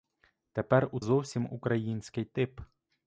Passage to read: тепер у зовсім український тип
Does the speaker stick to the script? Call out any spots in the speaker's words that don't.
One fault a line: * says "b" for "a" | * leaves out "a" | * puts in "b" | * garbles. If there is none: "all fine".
all fine